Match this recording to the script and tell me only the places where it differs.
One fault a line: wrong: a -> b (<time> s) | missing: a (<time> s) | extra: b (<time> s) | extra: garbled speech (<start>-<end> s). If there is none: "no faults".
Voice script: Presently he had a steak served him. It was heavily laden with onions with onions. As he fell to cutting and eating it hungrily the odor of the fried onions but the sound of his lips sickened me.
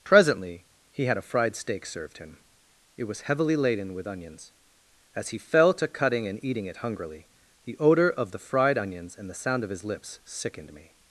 extra: fried (1.2 s)
missing: with onions (4.5 s)
wrong: but -> and (9.2 s)